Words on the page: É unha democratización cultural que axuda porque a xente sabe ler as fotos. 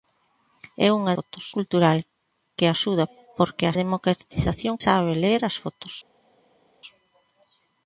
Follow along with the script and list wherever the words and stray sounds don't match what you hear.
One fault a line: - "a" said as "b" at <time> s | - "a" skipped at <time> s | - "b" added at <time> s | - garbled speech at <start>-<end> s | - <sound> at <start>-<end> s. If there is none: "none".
- "democratización" said as "fotos" at 1.2 s
- "xente" said as "democratización" at 3.8 s